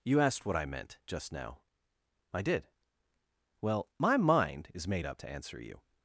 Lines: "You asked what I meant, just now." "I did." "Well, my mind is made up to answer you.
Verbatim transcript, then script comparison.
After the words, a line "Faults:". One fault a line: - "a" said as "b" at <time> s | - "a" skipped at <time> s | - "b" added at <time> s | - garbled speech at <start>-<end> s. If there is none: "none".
"You asked what I meant, just now." "I did." "Well, my mind is made up to answer you.
Faults:
none